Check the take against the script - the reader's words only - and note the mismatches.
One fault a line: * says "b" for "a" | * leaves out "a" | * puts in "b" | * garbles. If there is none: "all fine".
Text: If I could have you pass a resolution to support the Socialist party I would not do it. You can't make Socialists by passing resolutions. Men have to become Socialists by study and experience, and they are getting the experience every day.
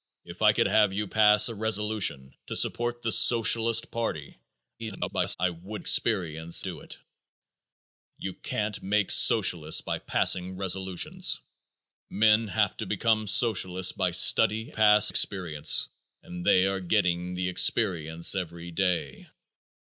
* garbles
* says "experience" for "not"
* says "pass" for "and"